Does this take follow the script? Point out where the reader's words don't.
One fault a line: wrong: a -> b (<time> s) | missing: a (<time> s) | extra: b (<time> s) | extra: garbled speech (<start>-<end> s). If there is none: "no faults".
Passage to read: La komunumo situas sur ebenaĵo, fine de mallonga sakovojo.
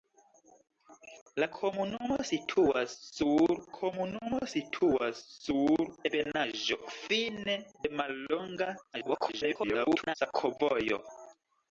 extra: komunumo situas sur (3.8 s)
extra: garbled speech (8.9-10.1 s)